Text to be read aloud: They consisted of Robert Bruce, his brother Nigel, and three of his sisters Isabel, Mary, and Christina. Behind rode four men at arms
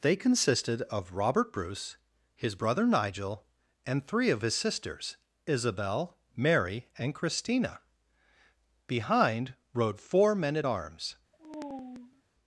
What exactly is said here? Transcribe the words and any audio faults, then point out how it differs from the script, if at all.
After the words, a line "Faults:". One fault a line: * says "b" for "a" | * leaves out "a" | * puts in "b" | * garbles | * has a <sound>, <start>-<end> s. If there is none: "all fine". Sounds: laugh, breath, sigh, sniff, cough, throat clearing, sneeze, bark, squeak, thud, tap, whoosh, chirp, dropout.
They consisted of Robert Bruce, his brother Nigel, and three of his sisters Isabel, Mary, and Christina. Behind rode four men at arms
Faults:
* has a sigh, 11.3-12.2 s